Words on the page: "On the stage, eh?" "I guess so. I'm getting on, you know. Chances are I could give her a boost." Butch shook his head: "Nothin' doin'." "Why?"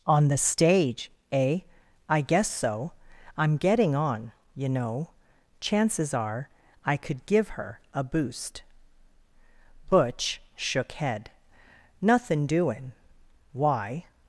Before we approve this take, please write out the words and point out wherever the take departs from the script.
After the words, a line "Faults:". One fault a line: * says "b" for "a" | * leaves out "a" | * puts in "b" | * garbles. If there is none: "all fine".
"On the stage, eh?" "I guess so. I'm getting on, you know. Chances are I could give her a boost." Butch shook head: "Nothin' doin'." "Why?"
Faults:
* leaves out "his"